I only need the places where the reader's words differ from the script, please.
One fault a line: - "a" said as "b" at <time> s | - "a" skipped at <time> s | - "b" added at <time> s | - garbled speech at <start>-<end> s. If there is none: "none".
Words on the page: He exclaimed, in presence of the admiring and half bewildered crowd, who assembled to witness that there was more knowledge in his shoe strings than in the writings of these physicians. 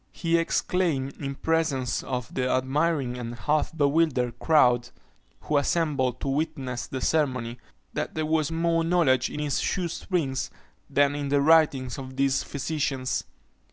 - "the ceremony" added at 6.9 s